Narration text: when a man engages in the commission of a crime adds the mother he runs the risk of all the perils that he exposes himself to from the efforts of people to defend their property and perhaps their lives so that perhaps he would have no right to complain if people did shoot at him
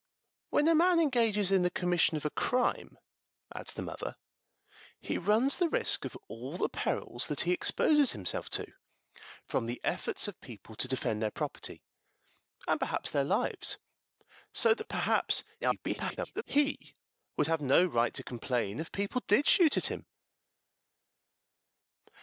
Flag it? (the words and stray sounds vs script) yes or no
yes